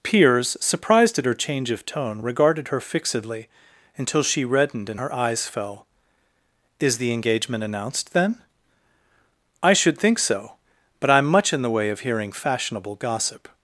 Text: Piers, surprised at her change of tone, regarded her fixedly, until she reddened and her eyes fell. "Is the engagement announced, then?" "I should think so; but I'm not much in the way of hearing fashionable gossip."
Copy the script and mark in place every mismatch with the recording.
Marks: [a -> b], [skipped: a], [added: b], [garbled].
Piers, surprised at her change of tone, regarded her fixedly, until she reddened and her eyes fell. "Is the engagement announced, then?" "I should think so; but I'm [skipped: not] much in the way of hearing fashionable gossip."